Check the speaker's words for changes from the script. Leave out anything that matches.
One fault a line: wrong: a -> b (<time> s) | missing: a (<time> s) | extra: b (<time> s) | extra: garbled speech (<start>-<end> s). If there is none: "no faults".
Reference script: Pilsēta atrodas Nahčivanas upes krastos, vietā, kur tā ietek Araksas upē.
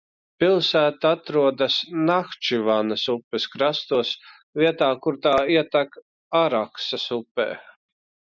no faults